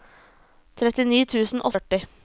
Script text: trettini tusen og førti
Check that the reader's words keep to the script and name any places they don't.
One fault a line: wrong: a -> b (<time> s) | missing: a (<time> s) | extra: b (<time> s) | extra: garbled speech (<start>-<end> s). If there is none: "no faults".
no faults